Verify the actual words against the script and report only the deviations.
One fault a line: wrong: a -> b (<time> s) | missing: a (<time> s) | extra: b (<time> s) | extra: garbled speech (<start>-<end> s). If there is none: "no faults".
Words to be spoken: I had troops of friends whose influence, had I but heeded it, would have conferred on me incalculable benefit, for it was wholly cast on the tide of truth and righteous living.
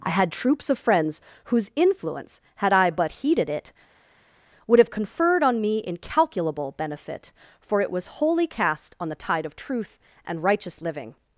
no faults